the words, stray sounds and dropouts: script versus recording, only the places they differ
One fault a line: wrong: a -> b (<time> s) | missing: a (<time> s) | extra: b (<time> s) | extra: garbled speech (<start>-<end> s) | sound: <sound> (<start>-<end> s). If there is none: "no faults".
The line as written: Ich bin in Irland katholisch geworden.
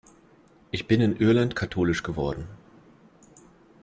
no faults